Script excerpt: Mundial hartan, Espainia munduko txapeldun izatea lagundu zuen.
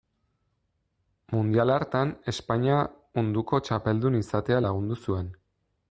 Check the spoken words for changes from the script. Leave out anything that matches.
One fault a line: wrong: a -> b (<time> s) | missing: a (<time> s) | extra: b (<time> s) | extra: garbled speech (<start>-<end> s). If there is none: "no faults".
no faults